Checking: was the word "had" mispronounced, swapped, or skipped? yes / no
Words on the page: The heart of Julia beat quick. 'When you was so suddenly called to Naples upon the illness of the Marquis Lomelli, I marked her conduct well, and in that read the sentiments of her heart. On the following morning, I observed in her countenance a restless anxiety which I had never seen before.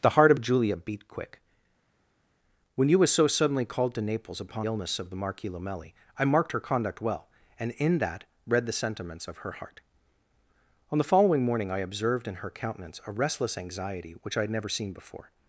no